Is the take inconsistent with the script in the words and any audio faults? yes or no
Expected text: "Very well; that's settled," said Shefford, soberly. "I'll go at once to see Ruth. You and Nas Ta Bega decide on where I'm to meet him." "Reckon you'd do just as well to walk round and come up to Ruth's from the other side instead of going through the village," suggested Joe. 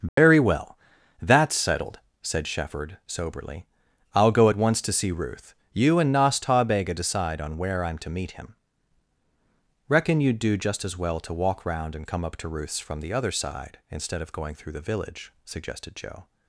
yes